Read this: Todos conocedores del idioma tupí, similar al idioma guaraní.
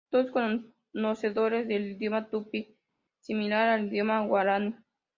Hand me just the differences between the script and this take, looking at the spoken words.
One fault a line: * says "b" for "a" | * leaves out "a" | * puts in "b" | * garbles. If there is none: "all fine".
all fine